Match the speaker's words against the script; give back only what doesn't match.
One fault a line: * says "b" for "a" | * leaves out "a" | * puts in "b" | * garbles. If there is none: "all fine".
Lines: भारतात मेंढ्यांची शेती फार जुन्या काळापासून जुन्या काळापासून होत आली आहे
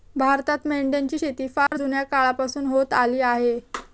* leaves out "जुन्या काळापासून"